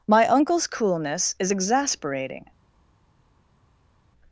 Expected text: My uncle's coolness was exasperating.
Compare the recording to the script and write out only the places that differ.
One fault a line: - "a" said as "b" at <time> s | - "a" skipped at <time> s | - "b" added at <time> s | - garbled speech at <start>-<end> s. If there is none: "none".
- "was" said as "is" at 1.4 s